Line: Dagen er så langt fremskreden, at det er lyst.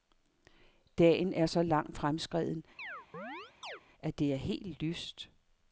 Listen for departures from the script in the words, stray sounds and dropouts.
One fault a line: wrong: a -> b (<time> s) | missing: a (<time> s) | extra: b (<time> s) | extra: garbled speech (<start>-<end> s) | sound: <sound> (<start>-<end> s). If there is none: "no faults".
sound: chirp (2.8-3.8 s)
extra: helt (4.4 s)